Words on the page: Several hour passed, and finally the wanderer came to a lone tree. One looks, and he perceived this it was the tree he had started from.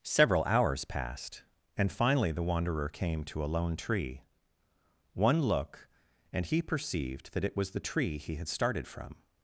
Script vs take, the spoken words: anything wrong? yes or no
yes